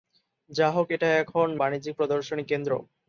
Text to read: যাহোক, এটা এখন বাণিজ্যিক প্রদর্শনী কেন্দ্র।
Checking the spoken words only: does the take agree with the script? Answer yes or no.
yes